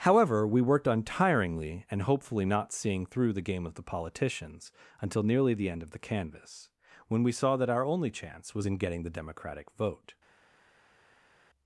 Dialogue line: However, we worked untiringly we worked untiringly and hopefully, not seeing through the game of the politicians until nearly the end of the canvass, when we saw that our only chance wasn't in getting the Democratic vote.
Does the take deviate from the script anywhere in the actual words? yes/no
yes